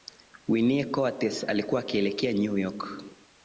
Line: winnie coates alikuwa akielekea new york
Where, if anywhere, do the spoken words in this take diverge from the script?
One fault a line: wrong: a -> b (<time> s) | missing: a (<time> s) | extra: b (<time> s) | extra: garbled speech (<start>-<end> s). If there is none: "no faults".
no faults